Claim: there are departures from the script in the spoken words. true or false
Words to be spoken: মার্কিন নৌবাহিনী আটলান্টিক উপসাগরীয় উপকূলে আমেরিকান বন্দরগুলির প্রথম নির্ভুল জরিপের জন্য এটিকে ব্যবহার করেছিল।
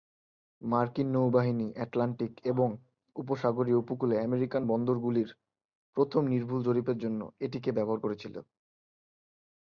true